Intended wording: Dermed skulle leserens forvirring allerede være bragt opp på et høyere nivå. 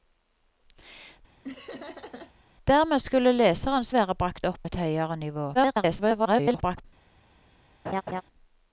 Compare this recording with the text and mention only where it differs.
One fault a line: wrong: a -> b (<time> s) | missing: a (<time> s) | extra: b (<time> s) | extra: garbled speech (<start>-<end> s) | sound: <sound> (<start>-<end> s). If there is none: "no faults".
sound: laugh (1.4-2.3 s)
missing: forvirring allerede (3.9 s)
missing: på (4.6 s)
extra: garbled speech (5.5-6.8 s)
sound: laugh (7.8-8.2 s)